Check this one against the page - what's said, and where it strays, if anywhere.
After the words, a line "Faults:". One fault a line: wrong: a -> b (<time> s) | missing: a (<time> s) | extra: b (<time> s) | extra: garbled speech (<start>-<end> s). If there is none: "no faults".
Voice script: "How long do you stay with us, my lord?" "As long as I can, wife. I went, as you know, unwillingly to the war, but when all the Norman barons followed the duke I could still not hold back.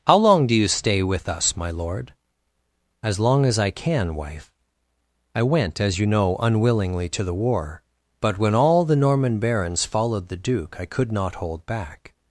"How long do you stay with us, my lord?" "As long as I can, wife. I went, as you know, unwillingly to the war, but when all the Norman barons followed the duke I could not hold back.
Faults:
missing: still (11.1 s)